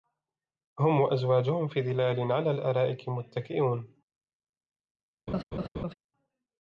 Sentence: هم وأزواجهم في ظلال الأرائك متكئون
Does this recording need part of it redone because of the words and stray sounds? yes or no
yes